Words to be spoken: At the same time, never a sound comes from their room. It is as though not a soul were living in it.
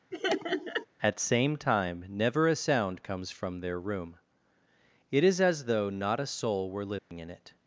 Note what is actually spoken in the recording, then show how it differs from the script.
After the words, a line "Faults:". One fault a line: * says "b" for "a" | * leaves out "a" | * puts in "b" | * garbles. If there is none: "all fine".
At same time, never a sound comes from their room. It is as though not a soul were living in it.
Faults:
* leaves out "the"